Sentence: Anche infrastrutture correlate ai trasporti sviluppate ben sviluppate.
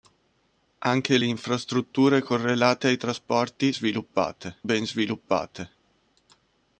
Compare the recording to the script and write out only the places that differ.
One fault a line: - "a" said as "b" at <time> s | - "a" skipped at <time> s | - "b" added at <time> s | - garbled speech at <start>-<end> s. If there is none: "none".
none